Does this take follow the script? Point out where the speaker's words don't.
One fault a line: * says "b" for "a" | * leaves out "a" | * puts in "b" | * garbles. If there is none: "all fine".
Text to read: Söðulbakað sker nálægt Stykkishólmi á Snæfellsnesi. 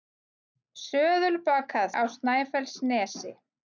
* leaves out "sker nálægt Stykkishólmi"